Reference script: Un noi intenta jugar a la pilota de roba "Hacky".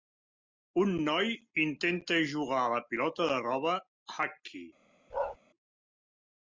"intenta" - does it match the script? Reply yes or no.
yes